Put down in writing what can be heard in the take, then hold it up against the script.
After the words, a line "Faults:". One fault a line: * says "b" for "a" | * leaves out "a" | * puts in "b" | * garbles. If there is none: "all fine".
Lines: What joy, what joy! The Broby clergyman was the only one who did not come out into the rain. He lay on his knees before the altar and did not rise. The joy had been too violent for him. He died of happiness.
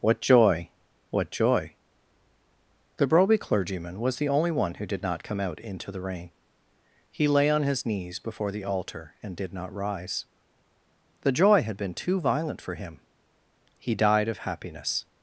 What joy, what joy! The Broby clergyman was the only one who did not come out into the rain. He lay on his knees before the altar and did not rise. The joy had been too violent for him. He died of happiness.
Faults:
all fine